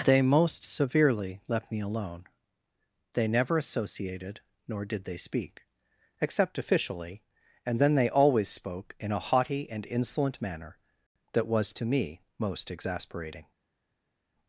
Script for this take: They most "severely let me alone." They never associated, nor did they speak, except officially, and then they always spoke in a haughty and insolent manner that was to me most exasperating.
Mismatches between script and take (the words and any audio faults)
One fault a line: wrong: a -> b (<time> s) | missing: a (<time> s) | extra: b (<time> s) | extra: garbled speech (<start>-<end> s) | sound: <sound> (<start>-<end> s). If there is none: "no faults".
wrong: let -> left (1.5 s)